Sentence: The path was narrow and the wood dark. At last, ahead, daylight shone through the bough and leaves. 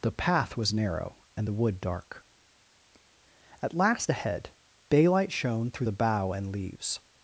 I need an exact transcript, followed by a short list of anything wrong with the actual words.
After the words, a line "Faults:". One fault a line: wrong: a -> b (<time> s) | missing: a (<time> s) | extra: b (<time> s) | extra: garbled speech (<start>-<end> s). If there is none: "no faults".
The path was narrow and the wood dark. At last, ahead, daylight shone through the bough and leaves.
Faults:
no faults